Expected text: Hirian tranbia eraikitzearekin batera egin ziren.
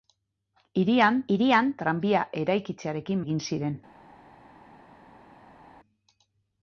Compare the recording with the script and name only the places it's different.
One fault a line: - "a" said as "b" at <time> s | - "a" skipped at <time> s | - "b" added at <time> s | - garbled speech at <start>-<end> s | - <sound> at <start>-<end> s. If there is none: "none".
- "hirian" added at 1.4 s
- "batera" skipped at 3.2 s